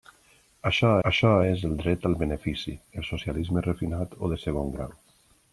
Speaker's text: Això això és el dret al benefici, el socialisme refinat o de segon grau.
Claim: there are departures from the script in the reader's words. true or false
false